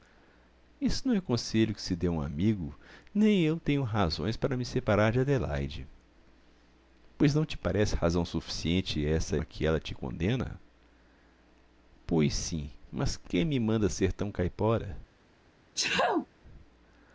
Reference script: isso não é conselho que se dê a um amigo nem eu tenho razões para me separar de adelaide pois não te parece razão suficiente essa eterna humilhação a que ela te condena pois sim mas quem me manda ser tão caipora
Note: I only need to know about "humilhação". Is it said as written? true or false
false